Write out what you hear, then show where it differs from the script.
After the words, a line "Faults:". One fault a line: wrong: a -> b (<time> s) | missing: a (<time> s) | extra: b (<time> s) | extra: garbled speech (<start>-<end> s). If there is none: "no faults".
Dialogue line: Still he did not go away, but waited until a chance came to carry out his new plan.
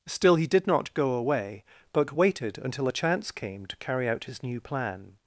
Still he did not go away, but waited until a chance came to carry out his new plan.
Faults:
no faults